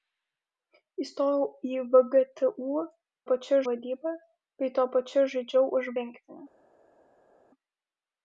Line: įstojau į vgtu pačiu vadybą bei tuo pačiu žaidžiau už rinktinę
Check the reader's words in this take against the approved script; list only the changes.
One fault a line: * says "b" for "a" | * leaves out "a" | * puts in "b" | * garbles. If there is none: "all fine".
all fine